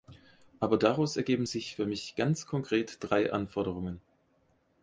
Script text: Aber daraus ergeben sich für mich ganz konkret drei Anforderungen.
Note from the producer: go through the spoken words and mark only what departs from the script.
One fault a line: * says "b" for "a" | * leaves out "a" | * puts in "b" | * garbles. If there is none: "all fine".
all fine